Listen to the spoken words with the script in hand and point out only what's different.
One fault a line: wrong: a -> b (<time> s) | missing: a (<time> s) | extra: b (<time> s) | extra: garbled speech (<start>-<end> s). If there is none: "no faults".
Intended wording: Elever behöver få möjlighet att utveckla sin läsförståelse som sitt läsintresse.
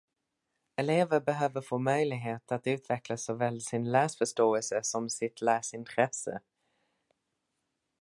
extra: såväl (3.2 s)